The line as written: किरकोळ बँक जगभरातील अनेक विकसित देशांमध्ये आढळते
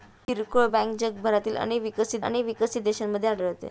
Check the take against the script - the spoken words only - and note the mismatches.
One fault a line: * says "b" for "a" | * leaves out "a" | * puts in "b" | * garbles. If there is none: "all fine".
* puts in "अनेक विकसित"